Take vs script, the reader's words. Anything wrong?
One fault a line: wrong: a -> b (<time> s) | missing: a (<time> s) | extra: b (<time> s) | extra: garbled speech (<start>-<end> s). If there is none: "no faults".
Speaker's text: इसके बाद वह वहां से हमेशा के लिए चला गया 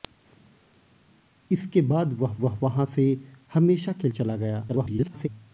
extra: वह (2.3 s)
missing: लिए (4.1 s)
extra: garbled speech (4.7-5.3 s)